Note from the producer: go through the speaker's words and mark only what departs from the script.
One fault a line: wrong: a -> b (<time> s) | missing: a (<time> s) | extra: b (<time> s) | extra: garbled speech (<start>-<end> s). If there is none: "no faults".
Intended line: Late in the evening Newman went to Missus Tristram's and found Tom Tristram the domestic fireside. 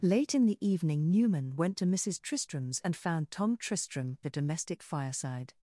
no faults